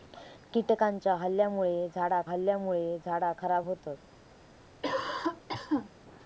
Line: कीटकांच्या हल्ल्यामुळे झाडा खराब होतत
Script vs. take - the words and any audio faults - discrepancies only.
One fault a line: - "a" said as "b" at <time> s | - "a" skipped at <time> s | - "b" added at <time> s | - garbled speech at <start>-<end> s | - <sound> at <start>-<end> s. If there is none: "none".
- "हल्ल्यामुळे झाडा" added at 2.2 s
- cough at 4.8-5.9 s